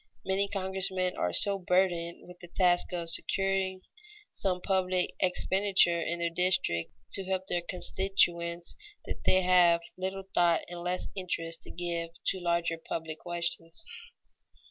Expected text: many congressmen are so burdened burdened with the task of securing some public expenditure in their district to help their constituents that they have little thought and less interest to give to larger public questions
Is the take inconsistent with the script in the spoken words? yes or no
yes